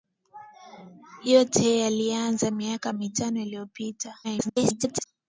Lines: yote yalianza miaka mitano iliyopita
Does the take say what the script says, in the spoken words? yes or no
no